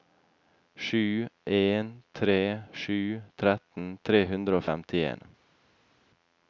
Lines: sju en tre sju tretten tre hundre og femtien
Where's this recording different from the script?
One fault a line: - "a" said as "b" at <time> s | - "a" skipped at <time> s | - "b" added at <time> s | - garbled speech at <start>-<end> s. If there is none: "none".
none